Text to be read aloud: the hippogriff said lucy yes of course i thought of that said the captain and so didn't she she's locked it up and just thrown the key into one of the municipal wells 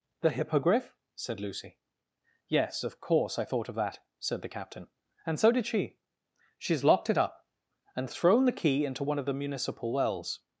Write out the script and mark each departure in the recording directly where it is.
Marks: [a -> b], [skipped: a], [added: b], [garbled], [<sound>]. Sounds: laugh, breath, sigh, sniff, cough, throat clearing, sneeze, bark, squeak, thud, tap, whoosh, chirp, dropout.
the hippogriff said lucy yes of course i thought of that said the captain and so [didn't -> did] she she's locked it up and [skipped: just] thrown the key into one of the municipal wells